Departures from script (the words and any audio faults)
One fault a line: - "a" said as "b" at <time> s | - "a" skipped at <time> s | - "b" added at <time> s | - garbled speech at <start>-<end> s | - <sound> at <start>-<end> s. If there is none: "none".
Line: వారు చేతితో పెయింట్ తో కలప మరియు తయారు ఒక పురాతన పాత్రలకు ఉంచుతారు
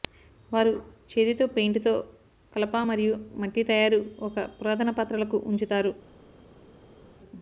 - "మట్టి" added at 3.4 s